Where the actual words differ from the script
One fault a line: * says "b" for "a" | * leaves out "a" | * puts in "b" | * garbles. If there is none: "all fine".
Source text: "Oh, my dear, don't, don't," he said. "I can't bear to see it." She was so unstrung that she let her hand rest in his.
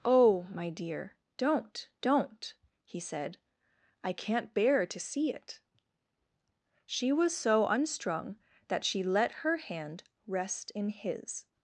all fine